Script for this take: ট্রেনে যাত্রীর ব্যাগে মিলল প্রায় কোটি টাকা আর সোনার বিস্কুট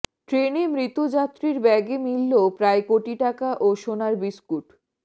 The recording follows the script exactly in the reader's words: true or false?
false